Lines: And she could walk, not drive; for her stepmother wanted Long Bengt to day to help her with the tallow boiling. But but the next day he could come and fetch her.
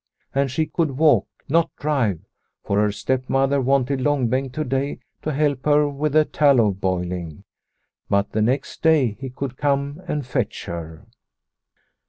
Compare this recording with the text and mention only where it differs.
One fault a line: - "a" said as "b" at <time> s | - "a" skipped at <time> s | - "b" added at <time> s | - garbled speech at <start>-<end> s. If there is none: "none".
- "but" skipped at 8.3 s